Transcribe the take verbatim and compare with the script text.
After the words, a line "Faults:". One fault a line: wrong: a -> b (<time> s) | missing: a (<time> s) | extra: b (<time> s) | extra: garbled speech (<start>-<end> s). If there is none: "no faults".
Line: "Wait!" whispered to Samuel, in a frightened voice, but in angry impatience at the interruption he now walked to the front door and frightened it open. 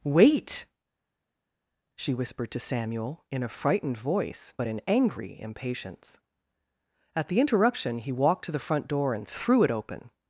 "Wait!" she whispered to Samuel, in a frightened voice, but in angry impatience at the interruption he walked to the front door and threw it open.
Faults:
extra: she (2.0 s)
missing: now (8.1 s)
wrong: frightened -> threw (9.3 s)